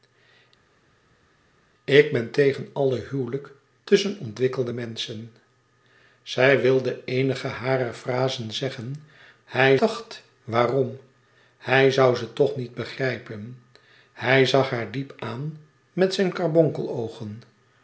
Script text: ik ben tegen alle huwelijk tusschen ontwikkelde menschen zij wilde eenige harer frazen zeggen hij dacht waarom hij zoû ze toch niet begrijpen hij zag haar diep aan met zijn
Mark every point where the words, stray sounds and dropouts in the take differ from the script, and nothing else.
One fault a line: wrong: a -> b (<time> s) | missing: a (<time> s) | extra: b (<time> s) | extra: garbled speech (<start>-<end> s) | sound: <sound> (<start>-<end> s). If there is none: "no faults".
no faults